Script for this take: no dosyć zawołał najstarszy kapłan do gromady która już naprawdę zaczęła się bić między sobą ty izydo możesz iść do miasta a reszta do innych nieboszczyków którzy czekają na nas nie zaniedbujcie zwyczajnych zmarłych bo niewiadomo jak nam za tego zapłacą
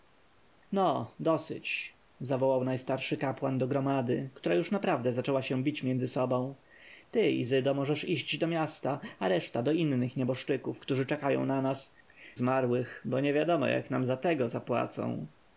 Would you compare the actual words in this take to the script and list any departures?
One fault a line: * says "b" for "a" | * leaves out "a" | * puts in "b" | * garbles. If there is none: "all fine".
* leaves out "nie zaniedbujcie zwyczajnych"